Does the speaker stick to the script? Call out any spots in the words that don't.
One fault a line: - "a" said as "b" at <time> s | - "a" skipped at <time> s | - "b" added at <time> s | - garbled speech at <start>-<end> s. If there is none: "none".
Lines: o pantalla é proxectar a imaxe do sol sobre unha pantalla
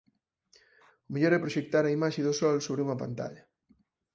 - "pantalla" said as "mellor" at 1.1 s